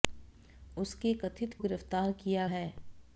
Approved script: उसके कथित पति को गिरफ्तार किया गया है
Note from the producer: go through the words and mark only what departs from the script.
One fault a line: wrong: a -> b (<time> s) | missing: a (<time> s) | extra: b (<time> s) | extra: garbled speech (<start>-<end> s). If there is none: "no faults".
missing: पति को (1.5 s)
missing: गया (2.5 s)